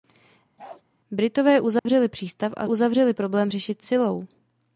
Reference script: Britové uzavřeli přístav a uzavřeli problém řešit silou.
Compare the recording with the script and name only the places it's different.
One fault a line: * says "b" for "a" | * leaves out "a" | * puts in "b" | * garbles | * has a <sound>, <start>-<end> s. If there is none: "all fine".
* has a bark, 0.6-0.8 s
* has a dropout, 1.8-1.9 s